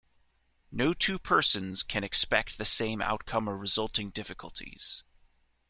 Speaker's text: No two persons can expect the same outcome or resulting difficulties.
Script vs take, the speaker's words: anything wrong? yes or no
no